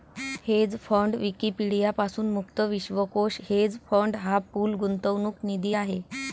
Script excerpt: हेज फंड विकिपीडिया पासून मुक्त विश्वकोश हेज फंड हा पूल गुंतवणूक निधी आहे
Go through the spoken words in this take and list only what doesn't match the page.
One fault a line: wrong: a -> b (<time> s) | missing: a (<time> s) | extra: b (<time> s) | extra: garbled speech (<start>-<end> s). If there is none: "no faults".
no faults